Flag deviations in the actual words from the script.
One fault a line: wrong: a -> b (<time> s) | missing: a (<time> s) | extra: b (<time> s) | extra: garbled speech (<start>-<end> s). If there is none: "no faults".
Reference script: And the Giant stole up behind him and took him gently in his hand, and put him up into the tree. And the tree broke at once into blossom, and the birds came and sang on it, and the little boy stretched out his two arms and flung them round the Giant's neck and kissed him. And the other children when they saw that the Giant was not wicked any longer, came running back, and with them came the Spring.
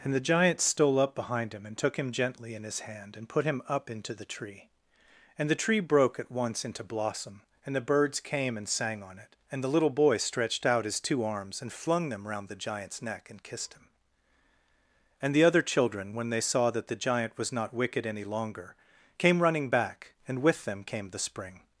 no faults